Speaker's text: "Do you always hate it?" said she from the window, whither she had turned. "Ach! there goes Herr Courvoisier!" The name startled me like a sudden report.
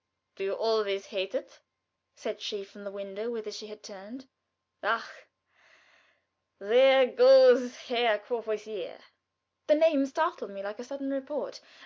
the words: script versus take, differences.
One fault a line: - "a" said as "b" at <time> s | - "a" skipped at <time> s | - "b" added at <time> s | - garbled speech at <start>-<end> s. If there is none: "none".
none